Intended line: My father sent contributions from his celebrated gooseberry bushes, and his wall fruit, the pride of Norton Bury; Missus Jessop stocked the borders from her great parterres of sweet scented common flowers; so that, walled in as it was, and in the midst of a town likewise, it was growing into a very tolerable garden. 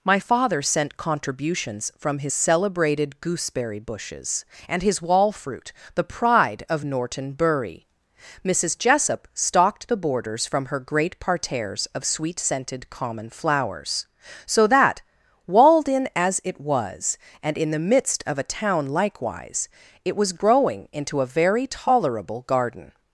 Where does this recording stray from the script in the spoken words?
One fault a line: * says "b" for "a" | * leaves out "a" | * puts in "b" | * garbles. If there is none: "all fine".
all fine